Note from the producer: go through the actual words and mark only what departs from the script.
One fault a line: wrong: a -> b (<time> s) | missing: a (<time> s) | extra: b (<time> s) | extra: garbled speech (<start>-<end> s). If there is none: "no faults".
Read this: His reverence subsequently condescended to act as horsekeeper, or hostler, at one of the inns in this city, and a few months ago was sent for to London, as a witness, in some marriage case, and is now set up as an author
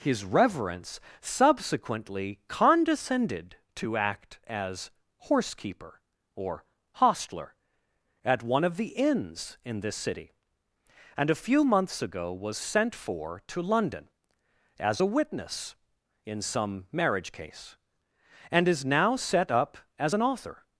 no faults